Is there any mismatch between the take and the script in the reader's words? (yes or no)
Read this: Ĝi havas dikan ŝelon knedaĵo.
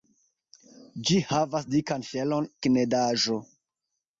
no